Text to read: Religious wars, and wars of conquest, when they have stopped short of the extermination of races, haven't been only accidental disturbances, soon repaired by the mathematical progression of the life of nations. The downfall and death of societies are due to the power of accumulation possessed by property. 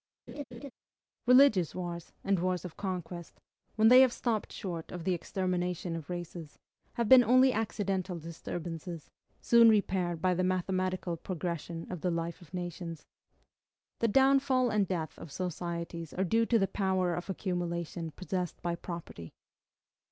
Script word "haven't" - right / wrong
wrong